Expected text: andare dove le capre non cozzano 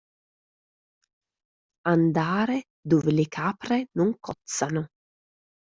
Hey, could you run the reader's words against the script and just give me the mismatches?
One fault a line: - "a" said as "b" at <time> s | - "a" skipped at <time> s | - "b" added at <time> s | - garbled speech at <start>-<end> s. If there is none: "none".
none